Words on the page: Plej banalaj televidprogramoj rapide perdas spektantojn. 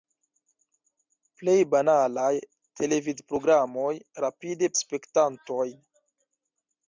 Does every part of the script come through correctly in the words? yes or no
no